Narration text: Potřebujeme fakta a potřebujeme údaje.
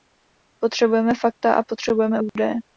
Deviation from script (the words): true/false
false